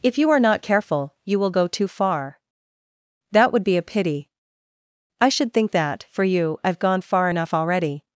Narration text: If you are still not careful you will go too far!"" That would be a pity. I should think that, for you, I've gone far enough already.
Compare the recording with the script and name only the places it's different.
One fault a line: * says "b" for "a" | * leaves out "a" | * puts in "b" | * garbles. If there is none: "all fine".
* leaves out "still"